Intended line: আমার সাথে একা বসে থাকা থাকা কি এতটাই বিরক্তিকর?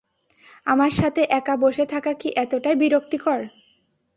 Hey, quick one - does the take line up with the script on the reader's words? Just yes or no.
no